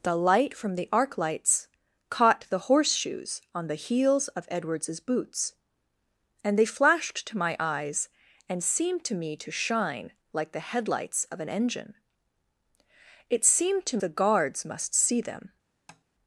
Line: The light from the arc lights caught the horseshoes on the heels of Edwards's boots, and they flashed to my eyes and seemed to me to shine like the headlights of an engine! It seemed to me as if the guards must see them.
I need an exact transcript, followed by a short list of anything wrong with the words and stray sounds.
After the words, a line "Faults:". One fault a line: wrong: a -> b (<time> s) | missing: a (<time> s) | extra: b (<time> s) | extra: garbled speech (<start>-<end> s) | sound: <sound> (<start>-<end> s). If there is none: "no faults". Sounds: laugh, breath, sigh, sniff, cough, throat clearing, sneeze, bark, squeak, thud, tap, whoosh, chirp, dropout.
The light from the arc lights caught the horseshoes on the heels of Edwards's boots, and they flashed to my eyes and seemed to me to shine like the headlights of an engine! It seemed to the guards must see them.
Faults:
missing: me as if (14.0 s)
sound: tap (15.9-16.0 s)